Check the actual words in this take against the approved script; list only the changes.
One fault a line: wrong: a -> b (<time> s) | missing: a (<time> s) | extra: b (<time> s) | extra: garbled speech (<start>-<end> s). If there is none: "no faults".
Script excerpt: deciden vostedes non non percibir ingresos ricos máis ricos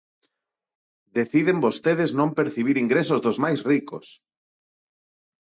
missing: non (2.4 s)
wrong: ricos -> dos (3.2 s)